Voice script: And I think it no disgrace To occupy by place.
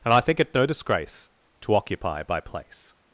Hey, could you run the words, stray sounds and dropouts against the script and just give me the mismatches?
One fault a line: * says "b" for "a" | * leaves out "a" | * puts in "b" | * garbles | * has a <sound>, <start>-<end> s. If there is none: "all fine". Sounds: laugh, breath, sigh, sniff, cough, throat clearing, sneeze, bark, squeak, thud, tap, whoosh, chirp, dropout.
all fine